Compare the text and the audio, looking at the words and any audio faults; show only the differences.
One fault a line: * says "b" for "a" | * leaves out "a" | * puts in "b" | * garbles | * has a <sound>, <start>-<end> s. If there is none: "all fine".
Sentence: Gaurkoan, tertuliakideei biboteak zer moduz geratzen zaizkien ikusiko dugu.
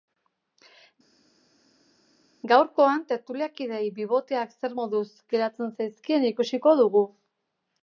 all fine